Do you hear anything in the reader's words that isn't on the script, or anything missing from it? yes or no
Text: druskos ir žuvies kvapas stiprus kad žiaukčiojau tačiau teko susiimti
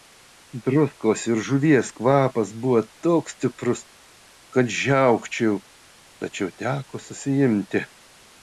yes